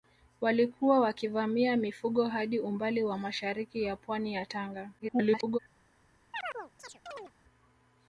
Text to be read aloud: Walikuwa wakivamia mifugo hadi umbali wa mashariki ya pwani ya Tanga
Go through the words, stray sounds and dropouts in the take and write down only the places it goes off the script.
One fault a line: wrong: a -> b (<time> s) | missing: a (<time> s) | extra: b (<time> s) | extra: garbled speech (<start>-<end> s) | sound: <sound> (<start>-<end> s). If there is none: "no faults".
extra: garbled speech (5.0-5.6 s)
sound: chirp (6.3-7.3 s)